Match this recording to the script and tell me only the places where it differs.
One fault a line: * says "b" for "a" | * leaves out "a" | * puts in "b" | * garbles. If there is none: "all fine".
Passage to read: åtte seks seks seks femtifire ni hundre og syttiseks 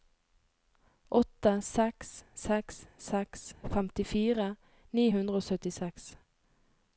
all fine